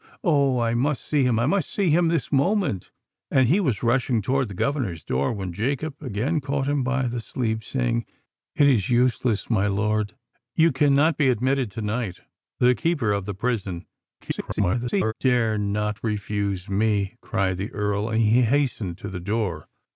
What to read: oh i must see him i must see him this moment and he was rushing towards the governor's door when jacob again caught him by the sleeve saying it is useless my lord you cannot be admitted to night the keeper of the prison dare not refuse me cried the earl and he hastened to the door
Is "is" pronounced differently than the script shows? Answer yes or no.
no